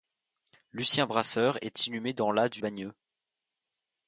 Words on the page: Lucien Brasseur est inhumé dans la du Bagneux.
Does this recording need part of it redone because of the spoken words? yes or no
no